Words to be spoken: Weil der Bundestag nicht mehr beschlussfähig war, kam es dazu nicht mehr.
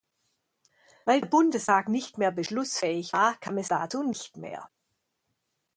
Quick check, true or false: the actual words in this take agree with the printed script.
true